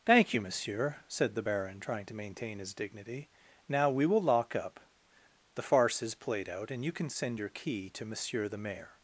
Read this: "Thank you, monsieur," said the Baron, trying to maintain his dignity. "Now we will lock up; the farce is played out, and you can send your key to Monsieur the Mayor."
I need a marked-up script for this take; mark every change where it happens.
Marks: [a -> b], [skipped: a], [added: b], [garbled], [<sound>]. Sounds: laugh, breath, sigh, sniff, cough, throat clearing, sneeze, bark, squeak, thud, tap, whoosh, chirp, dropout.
"Thank you, monsieur," said the Baron, trying to maintain his dignity. "Now we will lock up; the farce is played out, and you can send your key to Monsieur the Mayor."